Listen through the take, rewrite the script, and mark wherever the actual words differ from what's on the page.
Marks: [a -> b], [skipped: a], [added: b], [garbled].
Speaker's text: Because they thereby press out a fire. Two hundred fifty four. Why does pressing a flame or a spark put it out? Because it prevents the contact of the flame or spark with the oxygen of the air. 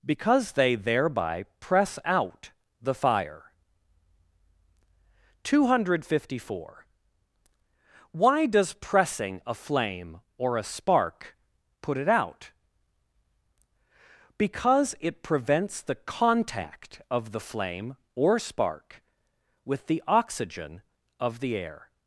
Because they thereby press out [a -> the] fire. Two hundred fifty four. Why does pressing a flame or a spark put it out? Because it prevents the contact of the flame or spark with the oxygen of the air.